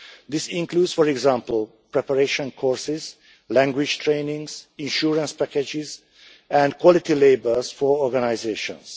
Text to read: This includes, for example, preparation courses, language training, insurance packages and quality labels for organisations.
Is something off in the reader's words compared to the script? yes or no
no